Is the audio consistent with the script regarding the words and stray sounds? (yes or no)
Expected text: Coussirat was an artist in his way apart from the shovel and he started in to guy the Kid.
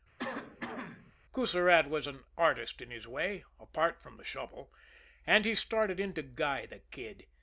no